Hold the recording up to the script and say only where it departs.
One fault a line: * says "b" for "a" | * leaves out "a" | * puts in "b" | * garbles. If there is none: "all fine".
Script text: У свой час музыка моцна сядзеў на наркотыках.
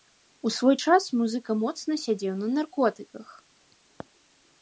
all fine